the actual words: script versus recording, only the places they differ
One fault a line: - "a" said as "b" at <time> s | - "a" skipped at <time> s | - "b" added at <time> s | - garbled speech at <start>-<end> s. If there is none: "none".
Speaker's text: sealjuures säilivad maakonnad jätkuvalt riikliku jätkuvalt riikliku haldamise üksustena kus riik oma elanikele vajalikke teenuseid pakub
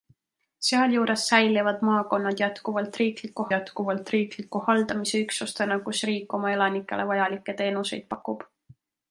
none